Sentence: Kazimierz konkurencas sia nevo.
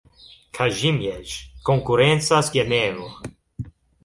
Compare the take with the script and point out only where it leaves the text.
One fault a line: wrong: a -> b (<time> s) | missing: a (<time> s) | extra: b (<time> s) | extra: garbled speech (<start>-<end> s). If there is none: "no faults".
no faults